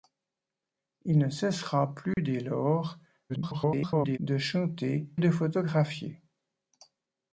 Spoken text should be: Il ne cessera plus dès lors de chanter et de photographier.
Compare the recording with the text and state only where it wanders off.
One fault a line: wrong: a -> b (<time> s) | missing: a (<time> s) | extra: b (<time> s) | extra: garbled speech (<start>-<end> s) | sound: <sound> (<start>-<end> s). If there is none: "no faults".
sound: dropout (2.1-2.2 s)
extra: garbled speech (3.3-4.2 s)
missing: et (5.1 s)